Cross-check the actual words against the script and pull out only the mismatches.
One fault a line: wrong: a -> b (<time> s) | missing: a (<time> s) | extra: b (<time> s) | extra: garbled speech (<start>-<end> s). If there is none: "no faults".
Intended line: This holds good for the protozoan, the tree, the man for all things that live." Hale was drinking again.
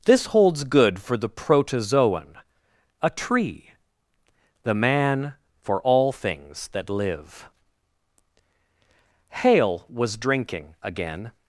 wrong: the -> a (3.0 s)